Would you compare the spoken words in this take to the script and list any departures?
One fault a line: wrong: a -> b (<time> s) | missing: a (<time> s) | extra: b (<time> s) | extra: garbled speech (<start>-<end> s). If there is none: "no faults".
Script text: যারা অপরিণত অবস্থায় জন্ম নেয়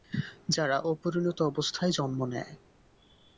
no faults